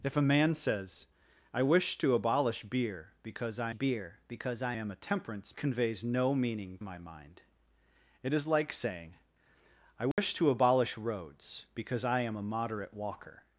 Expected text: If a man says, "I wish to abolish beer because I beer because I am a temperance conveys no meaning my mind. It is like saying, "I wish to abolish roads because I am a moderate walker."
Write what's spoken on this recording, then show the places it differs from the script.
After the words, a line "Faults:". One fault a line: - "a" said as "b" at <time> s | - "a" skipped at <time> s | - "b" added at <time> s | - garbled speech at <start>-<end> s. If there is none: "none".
If a man says, "I wish to abolish beer because I beer because I am a temperance conveys no meaning my mind. It is like saying, "I wish to abolish roads because I am a moderate walker."
Faults:
none